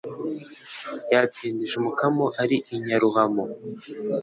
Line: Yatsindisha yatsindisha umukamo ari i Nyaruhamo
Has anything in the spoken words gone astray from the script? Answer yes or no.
yes